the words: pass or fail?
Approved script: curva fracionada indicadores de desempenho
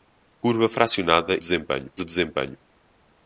fail